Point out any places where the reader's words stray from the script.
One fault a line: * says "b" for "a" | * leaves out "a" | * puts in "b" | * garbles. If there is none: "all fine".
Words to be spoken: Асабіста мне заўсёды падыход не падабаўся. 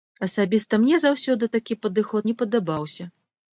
* puts in "такі"